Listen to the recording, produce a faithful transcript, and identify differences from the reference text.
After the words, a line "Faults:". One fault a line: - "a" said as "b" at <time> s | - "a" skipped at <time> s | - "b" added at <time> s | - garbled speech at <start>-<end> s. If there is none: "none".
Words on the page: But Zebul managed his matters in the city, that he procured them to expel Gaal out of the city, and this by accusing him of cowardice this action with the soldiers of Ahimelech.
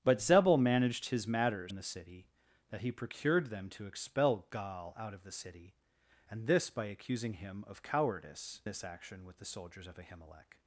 But Zebul managed his matters in the city, that he procured them to expel Gaal out of the city, and this by accusing him of cowardice this action with the soldiers of Ahimelech.
Faults:
none